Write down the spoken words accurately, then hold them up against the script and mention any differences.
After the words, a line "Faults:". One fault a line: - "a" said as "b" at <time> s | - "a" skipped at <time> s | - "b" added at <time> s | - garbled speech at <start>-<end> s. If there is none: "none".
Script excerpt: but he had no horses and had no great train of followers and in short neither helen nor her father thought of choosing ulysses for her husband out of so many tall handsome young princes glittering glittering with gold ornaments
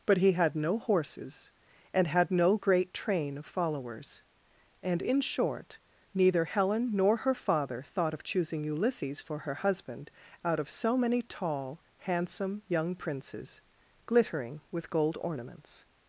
but he had no horses and had no great train of followers and in short neither helen nor her father thought of choosing ulysses for her husband out of so many tall handsome young princes glittering with gold ornaments
Faults:
- "glittering" skipped at 14.6 s